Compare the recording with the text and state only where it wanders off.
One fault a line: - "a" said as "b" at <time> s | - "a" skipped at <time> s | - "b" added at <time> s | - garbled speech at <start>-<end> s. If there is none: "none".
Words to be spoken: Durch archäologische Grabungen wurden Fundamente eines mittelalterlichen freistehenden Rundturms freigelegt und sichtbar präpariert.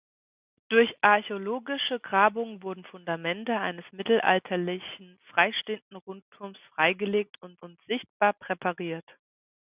- "und" added at 7.6 s